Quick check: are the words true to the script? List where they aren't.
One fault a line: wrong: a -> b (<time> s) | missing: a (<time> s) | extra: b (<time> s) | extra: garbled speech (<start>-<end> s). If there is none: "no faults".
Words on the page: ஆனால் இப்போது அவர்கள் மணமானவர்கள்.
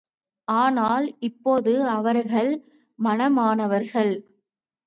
no faults